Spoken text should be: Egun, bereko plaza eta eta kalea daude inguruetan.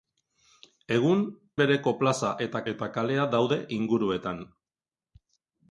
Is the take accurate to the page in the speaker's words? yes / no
yes